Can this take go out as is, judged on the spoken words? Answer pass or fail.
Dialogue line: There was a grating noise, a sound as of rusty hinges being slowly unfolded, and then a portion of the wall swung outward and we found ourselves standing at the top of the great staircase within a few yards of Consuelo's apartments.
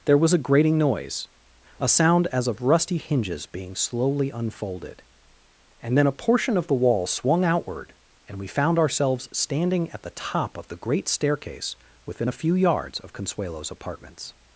pass